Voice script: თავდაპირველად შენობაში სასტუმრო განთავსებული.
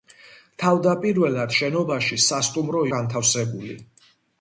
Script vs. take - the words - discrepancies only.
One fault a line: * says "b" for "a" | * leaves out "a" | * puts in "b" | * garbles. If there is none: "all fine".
all fine